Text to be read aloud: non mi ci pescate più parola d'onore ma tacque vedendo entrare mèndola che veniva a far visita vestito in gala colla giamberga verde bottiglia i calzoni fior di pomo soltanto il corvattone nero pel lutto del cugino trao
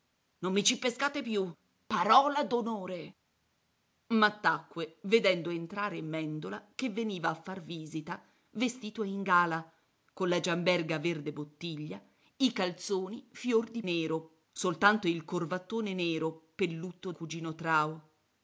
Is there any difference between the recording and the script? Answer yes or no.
yes